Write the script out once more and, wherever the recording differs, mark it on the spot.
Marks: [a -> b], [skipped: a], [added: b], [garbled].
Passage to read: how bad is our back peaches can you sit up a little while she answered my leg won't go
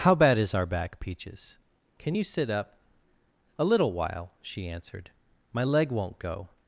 how bad is our back peaches can you sit up a little while she answered my leg won't go